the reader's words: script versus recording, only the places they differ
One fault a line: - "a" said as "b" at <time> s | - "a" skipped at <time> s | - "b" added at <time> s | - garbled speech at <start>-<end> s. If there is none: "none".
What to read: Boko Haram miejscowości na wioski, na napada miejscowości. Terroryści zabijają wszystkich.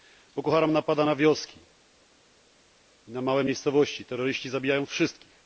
- "miejscowości" said as "napada" at 0.7 s
- "napada" said as "małe" at 3.2 s